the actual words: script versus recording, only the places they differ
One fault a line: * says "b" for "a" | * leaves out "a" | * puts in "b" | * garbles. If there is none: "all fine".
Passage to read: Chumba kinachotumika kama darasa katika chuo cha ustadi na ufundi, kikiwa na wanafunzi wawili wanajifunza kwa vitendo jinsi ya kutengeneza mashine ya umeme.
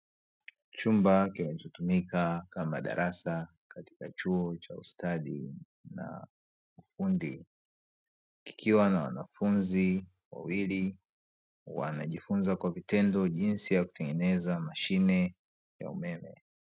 all fine